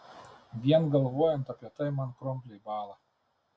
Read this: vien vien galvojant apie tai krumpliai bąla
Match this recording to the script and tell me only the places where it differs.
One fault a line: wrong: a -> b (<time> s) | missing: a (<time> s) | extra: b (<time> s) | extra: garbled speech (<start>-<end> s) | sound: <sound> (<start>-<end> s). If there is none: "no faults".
missing: vien (0.9 s)
extra: man (2.0 s)